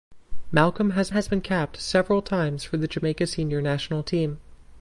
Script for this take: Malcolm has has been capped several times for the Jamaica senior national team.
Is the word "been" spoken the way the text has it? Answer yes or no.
yes